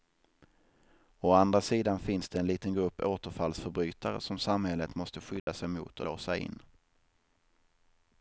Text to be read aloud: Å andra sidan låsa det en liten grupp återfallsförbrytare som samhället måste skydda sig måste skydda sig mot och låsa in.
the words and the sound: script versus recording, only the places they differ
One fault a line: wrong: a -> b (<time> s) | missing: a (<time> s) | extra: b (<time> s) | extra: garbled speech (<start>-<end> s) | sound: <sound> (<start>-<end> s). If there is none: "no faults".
wrong: låsa -> finns (2.0 s)
sound: dropout (5.4-5.5 s)
missing: måste skydda sig (5.7 s)